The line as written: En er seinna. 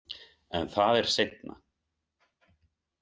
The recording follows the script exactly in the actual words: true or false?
false